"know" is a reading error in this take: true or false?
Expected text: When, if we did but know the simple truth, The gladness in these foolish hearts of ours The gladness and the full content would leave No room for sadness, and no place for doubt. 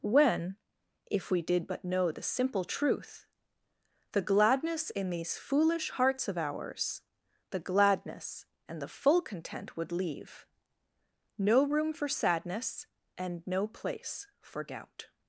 false